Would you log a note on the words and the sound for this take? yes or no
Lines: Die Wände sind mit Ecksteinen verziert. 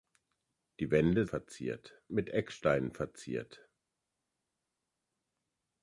yes